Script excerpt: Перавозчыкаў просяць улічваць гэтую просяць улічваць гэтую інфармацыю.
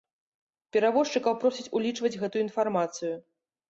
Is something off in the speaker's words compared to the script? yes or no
yes